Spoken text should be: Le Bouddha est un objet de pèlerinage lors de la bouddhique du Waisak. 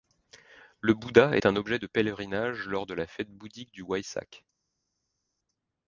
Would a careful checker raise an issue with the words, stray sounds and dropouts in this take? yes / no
yes